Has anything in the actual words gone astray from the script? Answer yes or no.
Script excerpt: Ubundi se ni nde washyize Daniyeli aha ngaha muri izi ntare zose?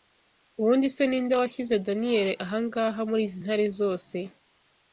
no